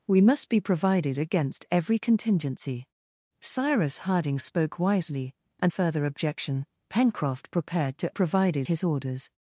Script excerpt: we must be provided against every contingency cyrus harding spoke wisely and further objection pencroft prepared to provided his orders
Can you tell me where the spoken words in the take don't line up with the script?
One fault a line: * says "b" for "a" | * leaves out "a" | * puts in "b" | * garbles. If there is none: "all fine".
all fine